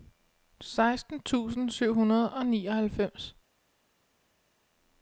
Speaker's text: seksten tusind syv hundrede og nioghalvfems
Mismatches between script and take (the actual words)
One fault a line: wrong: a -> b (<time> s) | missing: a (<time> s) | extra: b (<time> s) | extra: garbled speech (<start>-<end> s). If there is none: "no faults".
no faults